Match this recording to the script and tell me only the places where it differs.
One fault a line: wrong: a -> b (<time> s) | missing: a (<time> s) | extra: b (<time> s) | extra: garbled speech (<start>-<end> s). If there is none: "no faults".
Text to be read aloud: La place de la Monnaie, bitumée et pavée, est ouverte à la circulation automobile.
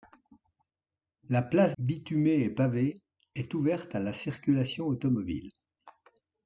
missing: de la Monnaie (1.8 s)